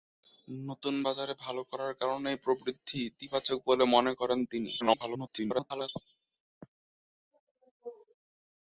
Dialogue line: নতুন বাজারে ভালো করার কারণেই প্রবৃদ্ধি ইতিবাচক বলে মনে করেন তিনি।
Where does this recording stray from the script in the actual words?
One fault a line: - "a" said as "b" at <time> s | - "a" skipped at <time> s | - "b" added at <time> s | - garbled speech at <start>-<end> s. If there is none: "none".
- garbled speech at 4.8-5.9 s